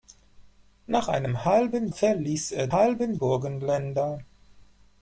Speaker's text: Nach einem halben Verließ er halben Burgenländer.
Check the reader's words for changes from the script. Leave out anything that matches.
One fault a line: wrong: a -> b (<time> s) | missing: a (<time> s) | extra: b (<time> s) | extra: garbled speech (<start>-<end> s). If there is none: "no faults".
no faults